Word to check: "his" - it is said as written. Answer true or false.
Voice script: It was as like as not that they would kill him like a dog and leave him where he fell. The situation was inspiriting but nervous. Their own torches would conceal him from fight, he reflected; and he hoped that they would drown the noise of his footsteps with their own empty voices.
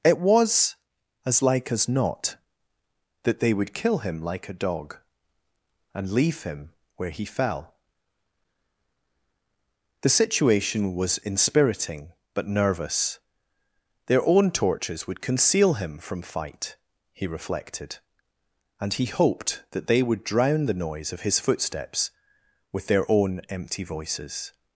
true